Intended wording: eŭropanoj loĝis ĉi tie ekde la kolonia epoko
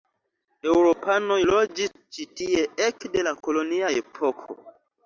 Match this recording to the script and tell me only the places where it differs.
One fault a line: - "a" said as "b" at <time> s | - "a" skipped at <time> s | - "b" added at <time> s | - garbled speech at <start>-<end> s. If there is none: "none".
none